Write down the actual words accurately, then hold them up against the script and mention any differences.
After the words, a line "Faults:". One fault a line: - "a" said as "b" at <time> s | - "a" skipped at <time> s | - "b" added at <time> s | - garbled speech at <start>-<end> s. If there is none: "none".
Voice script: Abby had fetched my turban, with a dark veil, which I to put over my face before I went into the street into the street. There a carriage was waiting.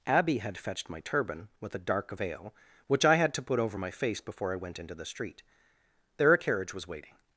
Abby had fetched my turban, with a dark veil, which I had to put over my face before I went into the street. There a carriage was waiting.
Faults:
- "had" added at 3.2 s
- "into the street" skipped at 5.4 s